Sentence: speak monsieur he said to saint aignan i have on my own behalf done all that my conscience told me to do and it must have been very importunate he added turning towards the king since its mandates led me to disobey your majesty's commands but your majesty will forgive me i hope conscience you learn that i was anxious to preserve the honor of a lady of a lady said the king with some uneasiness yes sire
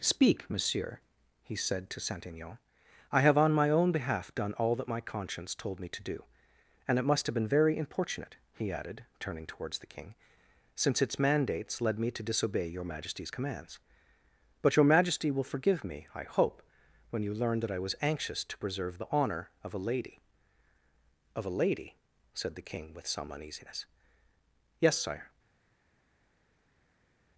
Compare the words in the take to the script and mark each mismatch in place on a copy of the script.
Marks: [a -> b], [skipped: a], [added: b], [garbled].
speak monsieur he said to saint aignan i have on my own behalf done all that my conscience told me to do and it must have been very importunate he added turning towards the king since its mandates led me to disobey your majesty's commands but your majesty will forgive me i hope [conscience -> when] you learn that i was anxious to preserve the honor of a lady of a lady said the king with some uneasiness yes sire